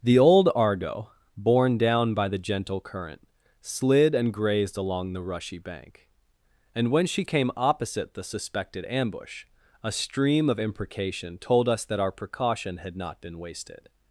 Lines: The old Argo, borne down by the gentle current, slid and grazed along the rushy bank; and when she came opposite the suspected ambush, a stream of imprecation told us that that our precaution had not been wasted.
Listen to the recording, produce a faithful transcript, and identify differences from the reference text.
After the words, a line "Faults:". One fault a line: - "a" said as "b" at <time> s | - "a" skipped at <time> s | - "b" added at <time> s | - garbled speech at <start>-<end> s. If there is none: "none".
The old Argo, borne down by the gentle current, slid and grazed along the rushy bank; and when she came opposite the suspected ambush, a stream of imprecation told us that our precaution had not been wasted.
Faults:
- "that" skipped at 12.0 s